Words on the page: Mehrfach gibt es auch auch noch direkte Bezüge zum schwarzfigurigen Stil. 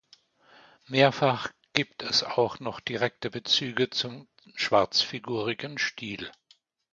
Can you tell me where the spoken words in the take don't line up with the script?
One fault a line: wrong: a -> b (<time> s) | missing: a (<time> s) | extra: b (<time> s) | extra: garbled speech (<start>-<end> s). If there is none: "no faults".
missing: auch (2.6 s)